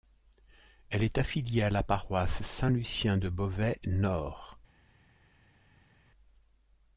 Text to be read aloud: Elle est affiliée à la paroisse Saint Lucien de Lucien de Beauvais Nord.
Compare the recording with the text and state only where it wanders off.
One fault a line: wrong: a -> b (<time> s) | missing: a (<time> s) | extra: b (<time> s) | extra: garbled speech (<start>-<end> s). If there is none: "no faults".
missing: Lucien de (3.3 s)